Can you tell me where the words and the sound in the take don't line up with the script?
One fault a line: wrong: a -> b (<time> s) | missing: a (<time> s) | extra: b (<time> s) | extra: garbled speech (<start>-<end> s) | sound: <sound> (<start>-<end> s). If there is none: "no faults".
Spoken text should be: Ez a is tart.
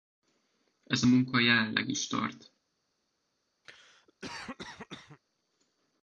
extra: munka jelenleg (1.0 s)
sound: cough (3.6-5.2 s)